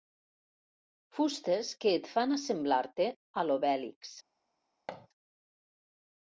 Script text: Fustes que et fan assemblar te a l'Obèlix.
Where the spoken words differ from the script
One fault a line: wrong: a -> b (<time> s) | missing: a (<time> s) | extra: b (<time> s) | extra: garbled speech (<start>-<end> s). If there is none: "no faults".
no faults